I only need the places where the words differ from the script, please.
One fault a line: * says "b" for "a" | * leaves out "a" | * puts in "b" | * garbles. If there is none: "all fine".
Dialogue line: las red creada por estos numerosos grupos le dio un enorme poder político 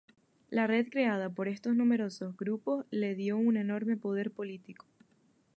* says "la" for "las"